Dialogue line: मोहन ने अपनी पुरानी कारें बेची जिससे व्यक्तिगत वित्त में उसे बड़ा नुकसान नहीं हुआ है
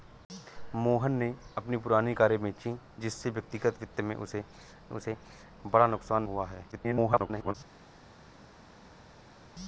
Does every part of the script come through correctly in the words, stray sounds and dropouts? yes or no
no